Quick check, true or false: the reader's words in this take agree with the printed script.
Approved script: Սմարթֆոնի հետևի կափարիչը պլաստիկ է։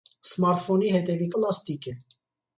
false